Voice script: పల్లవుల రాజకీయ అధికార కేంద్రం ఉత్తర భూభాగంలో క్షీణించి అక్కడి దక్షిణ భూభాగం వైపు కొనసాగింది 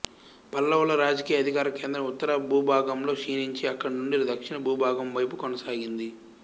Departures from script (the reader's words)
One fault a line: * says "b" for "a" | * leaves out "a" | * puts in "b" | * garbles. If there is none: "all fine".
* puts in "నుండి"